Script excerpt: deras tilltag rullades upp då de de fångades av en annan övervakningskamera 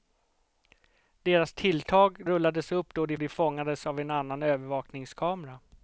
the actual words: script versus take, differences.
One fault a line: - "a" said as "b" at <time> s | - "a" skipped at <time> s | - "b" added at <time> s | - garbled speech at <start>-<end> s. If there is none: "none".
none